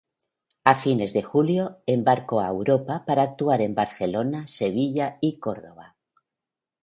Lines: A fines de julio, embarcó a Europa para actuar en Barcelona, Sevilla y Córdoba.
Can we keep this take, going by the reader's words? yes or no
yes